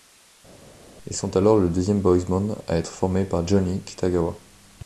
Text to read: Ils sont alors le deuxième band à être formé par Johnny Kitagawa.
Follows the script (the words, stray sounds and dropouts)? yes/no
no